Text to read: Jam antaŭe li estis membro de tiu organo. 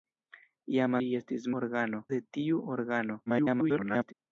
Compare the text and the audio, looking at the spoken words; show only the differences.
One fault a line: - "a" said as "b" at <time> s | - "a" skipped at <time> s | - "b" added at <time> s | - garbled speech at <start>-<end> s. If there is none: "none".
- "antaŭe" skipped at 0.9 s
- "membro" said as "organo" at 1.6 s
- garbled speech at 3.3-4.1 s